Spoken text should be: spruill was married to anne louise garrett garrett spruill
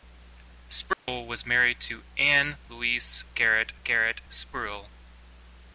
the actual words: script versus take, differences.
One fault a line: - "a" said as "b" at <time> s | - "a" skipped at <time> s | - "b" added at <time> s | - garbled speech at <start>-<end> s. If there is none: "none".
none